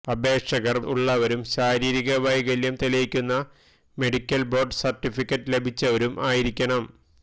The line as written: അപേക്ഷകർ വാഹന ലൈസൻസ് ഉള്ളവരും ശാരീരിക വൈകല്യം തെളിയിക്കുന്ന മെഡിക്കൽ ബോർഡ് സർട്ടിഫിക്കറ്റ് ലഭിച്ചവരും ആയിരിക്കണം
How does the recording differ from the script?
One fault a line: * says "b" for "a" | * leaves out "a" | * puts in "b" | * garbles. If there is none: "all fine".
* leaves out "വാഹന ലൈസൻസ്"